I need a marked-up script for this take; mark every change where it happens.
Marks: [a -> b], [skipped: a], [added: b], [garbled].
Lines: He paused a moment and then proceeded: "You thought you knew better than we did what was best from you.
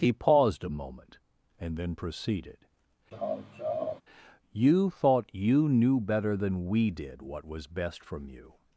He paused a moment and then proceeded: "You thought you knew better than we did what was best from you.